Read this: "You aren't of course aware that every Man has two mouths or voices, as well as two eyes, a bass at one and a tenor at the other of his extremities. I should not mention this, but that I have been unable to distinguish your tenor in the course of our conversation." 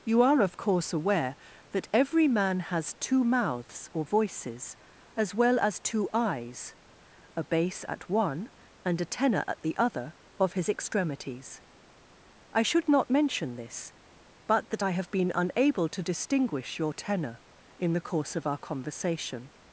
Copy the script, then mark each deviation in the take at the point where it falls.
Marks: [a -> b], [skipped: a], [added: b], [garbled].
"You [aren't -> are] of course aware that every Man has two mouths or voices, as well as two eyes, a bass at one and a tenor at the other of his extremities. I should not mention this, but that I have been unable to distinguish your tenor in the course of our conversation."